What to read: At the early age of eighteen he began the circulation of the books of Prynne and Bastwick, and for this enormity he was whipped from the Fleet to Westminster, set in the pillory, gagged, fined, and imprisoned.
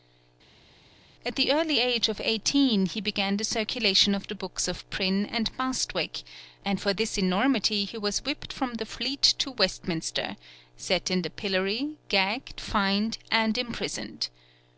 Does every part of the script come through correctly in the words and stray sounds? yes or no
yes